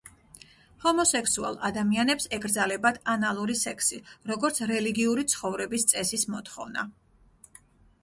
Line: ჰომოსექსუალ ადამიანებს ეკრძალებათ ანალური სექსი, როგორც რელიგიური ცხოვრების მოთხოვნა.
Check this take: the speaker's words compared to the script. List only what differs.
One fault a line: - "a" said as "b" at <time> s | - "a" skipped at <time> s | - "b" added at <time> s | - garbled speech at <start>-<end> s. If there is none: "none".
- "წესის" added at 6.0 s